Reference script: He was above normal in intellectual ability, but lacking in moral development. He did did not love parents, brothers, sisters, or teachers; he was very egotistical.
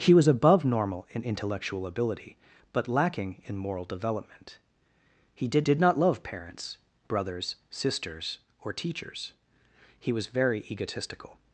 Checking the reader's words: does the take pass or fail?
pass